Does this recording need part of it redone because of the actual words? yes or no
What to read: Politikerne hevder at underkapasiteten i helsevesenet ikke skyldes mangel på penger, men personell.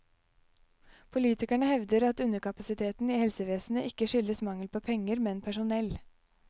no